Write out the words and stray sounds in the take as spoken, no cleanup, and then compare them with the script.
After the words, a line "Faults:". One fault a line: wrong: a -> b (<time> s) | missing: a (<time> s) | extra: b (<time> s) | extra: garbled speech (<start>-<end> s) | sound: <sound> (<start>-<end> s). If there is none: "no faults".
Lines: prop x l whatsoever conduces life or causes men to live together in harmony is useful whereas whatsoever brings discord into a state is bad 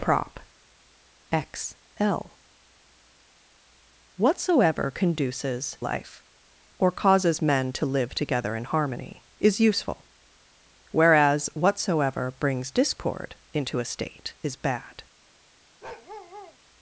prop x l whatsoever conduces life or causes men to live together in harmony is useful whereas whatsoever brings discord into a state is bad
Faults:
sound: bark (15.8-16.6 s)